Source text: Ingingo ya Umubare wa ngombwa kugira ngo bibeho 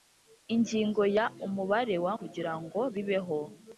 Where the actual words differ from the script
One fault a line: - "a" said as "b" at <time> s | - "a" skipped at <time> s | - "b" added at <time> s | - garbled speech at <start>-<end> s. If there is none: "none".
- "ngombwa" skipped at 2.1 s